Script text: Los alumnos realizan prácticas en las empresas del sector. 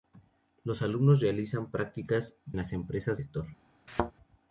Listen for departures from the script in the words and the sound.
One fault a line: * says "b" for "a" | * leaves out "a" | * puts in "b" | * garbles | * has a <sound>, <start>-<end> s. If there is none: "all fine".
* leaves out "en"
* leaves out "del"
* has a thud, 3.9-4.1 s